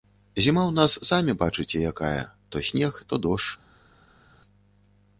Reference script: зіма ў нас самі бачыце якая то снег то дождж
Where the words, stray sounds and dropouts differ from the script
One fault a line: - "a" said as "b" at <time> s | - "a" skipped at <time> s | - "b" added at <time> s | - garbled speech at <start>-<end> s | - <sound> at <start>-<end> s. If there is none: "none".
none